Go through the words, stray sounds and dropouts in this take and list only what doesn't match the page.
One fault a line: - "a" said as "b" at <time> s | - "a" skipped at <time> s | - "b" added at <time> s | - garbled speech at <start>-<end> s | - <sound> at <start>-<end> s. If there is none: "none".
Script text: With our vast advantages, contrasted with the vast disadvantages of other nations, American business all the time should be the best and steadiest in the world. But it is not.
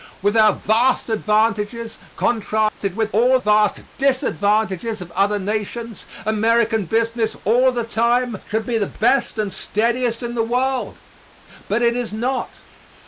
- dropout at 2.7-2.8 s
- "the" said as "all" at 3.1 s